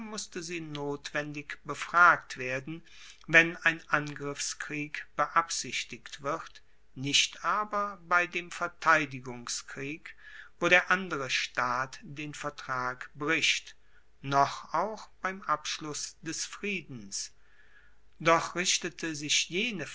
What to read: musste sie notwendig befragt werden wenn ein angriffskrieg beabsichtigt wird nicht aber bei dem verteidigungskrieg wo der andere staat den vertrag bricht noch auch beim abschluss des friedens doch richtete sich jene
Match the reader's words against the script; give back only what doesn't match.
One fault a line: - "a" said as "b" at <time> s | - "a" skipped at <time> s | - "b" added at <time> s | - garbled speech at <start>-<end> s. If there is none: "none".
none